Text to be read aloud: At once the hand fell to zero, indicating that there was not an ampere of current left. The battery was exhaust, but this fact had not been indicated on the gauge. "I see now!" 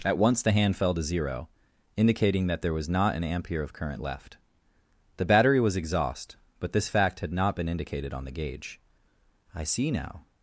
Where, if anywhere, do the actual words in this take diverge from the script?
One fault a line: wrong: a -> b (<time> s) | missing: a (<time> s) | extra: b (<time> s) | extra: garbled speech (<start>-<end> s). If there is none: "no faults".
no faults